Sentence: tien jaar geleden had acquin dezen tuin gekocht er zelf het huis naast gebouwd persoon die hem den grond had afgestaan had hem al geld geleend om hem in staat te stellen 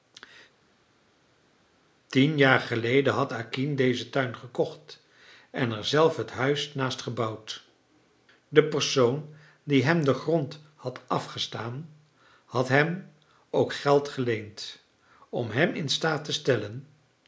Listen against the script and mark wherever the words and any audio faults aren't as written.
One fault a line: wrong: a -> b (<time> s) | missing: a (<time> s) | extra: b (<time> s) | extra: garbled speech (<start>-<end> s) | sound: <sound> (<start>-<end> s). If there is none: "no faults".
extra: en (5.5 s)
extra: de (8.5 s)
wrong: al -> ook (13.5 s)